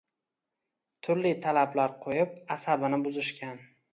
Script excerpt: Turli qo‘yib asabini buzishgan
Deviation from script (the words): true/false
true